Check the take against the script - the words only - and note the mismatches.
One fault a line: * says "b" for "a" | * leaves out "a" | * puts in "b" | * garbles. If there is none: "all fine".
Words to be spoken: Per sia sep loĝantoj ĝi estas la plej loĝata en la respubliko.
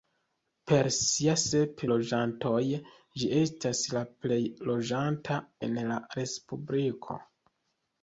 all fine